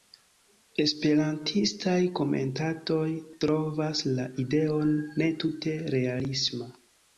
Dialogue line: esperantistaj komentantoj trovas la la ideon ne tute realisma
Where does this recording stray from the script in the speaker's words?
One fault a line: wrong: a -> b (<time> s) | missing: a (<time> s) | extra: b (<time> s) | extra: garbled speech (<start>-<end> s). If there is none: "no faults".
missing: la (4.3 s)